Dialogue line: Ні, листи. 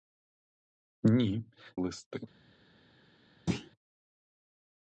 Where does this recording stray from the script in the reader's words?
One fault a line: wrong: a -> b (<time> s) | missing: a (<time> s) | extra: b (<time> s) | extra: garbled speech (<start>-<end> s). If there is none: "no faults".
no faults